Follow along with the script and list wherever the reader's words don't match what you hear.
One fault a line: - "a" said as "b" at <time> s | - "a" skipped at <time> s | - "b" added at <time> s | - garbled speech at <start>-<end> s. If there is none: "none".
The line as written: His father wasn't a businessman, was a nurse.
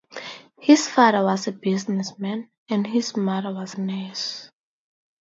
- "wasn't" said as "was" at 1.2 s
- "and his mother" added at 2.7 s